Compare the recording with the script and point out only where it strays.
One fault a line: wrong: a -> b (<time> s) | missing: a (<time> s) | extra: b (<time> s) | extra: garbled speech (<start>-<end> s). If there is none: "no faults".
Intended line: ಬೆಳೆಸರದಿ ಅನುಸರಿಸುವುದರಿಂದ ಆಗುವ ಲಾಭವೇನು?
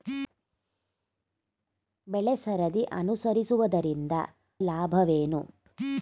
missing: ಆಗುವ (4.1 s)